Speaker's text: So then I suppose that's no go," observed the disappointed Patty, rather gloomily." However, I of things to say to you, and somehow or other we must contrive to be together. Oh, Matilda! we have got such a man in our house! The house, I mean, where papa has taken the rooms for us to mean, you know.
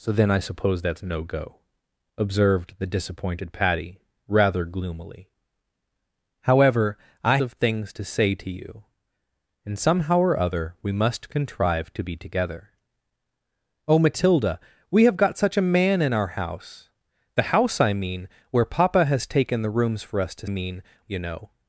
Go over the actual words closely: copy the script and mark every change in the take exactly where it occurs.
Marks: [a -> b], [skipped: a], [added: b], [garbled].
So then I suppose that's no go," observed the disappointed Patty, rather gloomily." However, I of things to say to you, and somehow or other we must contrive to be together. Oh, Matilda! we have got such a man in our house! The house, I mean, where papa has taken the rooms for us to mean, you know.